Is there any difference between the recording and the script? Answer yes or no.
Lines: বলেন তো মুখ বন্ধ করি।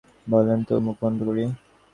no